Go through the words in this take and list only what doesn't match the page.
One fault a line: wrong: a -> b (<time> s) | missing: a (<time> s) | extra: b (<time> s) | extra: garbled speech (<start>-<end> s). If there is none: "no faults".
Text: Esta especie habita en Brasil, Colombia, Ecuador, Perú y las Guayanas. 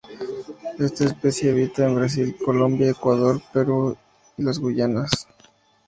no faults